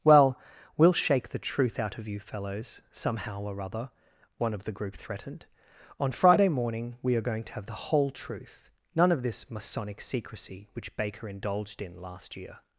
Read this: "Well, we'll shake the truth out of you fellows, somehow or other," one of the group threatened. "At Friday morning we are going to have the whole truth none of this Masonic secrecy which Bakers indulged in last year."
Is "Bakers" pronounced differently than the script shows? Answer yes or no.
yes